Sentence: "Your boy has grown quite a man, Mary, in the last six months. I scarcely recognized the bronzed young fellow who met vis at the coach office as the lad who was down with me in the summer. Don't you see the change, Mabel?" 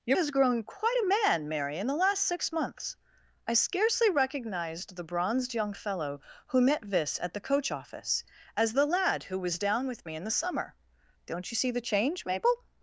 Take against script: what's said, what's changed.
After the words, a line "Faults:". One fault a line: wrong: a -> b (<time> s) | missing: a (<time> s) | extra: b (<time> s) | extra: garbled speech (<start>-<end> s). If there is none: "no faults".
"Your has grown quite a man, Mary, in the last six months. I scarcely recognized the bronzed young fellow who met vis at the coach office as the lad who was down with me in the summer. Don't you see the change, Mabel?"
Faults:
missing: boy (0.2 s)